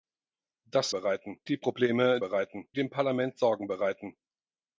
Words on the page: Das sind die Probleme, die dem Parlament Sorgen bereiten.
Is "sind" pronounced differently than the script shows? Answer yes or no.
yes